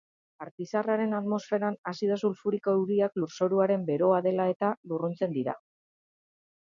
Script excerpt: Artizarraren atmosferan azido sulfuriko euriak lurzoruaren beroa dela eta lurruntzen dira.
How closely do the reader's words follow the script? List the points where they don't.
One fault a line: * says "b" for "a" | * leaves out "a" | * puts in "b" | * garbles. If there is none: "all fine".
all fine